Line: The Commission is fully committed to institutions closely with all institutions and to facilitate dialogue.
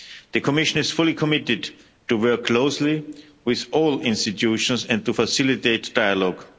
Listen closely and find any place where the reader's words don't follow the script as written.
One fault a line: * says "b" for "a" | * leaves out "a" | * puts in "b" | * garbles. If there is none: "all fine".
* says "work" for "institutions"